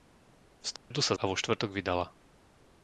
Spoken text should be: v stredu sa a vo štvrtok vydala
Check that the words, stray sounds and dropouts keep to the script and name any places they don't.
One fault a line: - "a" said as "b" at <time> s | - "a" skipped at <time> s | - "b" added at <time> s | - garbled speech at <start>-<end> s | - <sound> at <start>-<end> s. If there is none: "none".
- dropout at 0.8-0.9 s